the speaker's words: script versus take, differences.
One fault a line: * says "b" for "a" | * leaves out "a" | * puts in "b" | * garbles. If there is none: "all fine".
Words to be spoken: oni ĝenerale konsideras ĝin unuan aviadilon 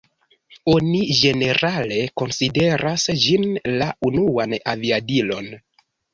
* puts in "la"